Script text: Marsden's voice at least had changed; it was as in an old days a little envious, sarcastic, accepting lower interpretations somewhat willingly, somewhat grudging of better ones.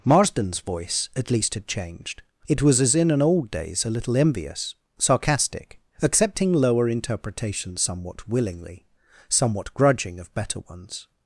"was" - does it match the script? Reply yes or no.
yes